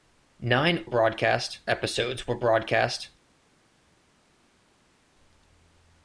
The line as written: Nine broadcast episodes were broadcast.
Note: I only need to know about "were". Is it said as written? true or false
true